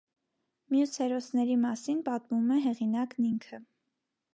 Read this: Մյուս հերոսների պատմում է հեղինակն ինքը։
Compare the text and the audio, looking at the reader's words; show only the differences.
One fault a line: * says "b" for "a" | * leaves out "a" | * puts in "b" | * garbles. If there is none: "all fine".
* puts in "մասին"